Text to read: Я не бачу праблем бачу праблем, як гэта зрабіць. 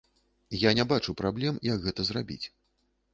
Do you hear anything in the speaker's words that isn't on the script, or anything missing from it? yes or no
yes